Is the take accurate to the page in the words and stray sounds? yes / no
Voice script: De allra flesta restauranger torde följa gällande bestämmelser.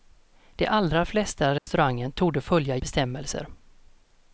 no